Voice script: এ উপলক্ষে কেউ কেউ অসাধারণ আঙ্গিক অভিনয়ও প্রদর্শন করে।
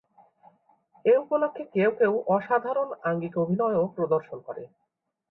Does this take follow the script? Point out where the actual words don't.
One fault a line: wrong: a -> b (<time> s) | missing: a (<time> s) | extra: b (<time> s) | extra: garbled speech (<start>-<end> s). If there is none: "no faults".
no faults